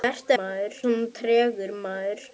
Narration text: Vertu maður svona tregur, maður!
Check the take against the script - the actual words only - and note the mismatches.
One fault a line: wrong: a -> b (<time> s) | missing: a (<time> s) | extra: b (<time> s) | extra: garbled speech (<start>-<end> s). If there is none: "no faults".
no faults